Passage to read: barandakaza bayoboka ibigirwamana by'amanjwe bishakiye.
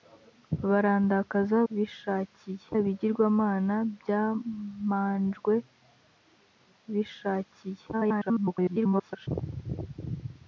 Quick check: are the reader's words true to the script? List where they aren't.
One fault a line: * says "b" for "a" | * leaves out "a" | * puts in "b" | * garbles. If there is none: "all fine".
* says "bishakiye" for "bayoboka"
* garbles